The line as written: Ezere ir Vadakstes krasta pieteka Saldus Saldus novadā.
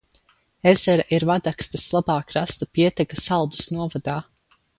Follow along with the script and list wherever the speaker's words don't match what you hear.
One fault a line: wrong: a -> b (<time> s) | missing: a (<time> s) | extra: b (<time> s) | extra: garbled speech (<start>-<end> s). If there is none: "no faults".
extra: labā (2.0 s)
missing: Saldus (3.7 s)